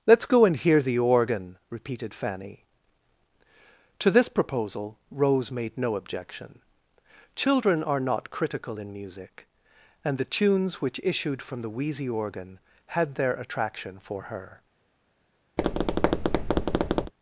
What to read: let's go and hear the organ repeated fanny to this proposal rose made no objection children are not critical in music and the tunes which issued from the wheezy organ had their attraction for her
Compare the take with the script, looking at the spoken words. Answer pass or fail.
pass